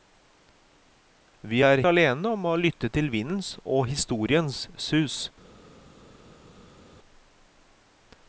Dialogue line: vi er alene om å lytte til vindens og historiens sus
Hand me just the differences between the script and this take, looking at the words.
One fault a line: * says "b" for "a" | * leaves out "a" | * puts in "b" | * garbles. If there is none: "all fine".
all fine